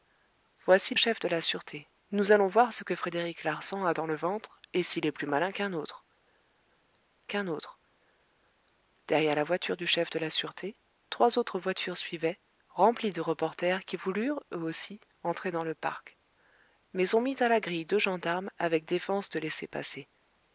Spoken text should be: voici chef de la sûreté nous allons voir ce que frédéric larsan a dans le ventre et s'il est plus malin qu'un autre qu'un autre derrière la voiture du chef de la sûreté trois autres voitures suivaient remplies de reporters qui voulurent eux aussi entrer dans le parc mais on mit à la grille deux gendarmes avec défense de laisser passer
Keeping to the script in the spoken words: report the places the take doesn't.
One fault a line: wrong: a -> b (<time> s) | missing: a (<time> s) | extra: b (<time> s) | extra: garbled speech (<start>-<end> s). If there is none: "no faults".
no faults